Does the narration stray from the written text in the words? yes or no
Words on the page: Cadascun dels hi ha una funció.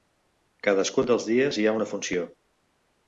yes